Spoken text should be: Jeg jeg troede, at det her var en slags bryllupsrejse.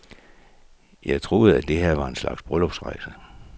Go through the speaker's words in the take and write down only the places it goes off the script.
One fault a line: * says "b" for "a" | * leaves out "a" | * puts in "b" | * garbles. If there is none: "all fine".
* leaves out "jeg"